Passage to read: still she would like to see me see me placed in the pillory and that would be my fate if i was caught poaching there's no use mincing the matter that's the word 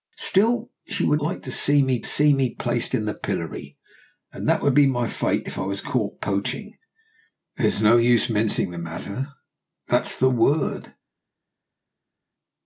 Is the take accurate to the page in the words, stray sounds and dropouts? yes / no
yes